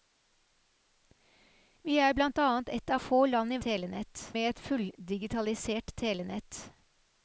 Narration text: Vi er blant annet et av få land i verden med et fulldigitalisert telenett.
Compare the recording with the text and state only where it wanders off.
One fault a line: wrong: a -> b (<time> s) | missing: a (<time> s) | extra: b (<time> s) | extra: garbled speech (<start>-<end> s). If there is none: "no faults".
wrong: verden -> telenett (3.7 s)